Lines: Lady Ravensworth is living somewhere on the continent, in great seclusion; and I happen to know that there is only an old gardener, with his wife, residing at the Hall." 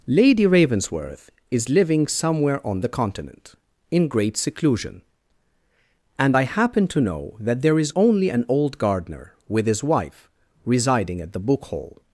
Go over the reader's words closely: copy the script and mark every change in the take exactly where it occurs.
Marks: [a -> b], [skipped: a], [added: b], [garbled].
Lady Ravensworth is living somewhere on the continent, in great seclusion; and I happen to know that there is only an old gardener, with his wife, residing at the [added: book] Hall."